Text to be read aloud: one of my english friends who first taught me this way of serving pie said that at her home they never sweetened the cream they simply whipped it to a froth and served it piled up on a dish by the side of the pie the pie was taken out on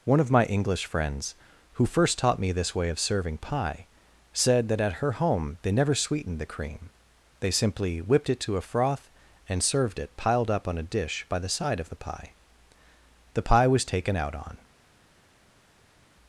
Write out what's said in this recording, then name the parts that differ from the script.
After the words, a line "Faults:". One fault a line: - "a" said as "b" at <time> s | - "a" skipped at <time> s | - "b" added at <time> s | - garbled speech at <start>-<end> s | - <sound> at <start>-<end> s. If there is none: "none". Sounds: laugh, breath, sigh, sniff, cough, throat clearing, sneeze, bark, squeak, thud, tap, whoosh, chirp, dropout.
one of my english friends who first taught me this way of serving pie said that at her home they never sweetened the cream they simply whipped it to a froth and served it piled up on a dish by the side of the pie the pie was taken out on
Faults:
none